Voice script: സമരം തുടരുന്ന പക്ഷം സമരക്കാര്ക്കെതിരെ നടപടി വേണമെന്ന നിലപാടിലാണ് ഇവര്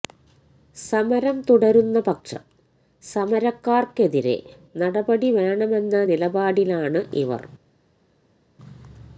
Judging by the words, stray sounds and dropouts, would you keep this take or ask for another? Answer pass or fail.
pass